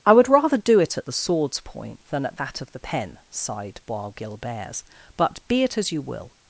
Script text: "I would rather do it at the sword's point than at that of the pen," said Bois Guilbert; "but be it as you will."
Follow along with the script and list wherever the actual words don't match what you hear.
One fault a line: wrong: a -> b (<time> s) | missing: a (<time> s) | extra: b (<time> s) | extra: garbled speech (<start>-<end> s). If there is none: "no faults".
wrong: said -> sighed (3.3 s)